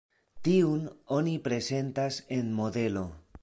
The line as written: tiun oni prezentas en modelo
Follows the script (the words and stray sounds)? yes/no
yes